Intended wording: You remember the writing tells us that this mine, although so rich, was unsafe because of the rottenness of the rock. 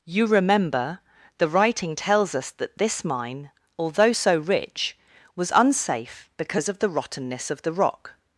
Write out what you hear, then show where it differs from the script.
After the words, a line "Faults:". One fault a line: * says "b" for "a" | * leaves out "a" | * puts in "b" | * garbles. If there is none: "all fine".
You remember the writing tells us that this mine, although so rich, was unsafe because of the rottenness of the rock.
Faults:
all fine